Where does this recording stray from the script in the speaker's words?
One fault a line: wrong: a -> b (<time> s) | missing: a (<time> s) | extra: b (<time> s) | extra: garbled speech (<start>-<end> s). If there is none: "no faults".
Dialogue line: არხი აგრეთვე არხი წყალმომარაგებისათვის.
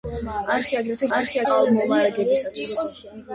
no faults